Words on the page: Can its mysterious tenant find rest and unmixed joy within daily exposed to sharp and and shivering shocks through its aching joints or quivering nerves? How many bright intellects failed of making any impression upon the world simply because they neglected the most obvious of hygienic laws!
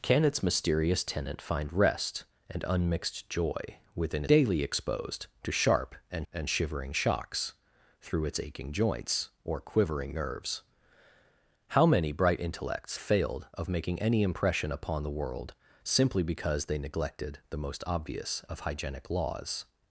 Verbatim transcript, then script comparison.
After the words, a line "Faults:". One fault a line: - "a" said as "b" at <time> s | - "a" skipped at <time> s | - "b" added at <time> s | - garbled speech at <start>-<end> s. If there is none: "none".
Can its mysterious tenant find rest and unmixed joy within daily exposed to sharp and and shivering shocks through its aching joints or quivering nerves? How many bright intellects failed of making any impression upon the world simply because they neglected the most obvious of hygienic laws!
Faults:
none